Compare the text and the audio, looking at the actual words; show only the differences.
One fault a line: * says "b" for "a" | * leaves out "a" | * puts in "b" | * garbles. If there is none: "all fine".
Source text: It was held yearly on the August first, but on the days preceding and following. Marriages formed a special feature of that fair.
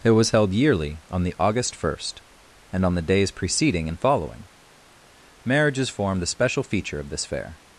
* says "and" for "but"
* says "this" for "that"